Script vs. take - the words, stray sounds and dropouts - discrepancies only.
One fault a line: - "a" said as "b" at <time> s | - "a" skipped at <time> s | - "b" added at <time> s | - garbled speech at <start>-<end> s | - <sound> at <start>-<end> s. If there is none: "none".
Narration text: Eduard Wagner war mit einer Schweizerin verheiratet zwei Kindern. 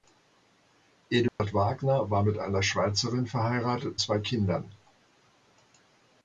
- dropout at 1.3-1.4 s